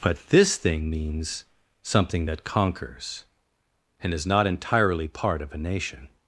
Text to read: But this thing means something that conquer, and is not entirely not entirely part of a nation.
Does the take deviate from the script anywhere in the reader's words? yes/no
yes